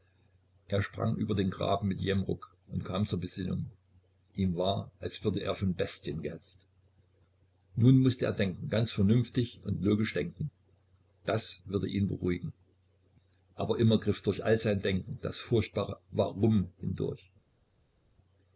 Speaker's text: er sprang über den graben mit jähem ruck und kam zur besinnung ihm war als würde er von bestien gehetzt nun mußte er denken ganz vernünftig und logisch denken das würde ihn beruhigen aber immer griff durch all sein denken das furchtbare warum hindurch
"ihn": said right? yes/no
yes